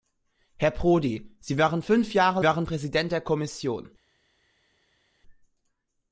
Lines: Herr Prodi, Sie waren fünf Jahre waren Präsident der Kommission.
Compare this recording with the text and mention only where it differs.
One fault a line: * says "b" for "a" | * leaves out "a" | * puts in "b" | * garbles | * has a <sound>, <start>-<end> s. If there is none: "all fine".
all fine